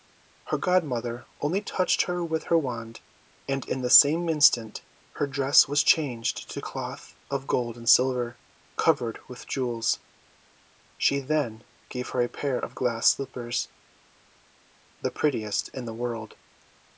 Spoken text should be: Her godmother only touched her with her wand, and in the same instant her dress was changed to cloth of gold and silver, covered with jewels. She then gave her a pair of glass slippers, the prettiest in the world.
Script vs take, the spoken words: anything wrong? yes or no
no